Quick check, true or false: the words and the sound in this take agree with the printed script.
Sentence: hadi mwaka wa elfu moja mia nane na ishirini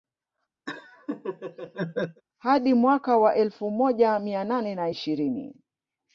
false